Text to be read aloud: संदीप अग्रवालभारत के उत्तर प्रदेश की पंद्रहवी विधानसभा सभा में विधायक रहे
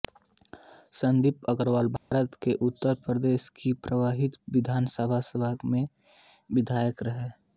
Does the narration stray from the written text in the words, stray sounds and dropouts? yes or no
yes